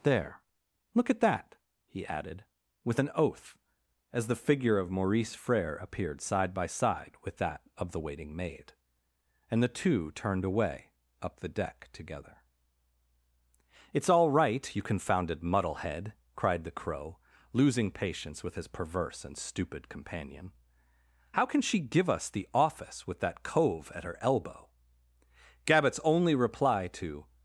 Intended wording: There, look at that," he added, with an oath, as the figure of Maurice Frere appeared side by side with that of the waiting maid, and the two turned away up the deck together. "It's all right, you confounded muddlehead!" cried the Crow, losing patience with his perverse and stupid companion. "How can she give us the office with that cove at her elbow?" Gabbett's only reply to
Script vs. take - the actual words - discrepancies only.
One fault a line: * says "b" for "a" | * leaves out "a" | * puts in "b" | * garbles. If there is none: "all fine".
all fine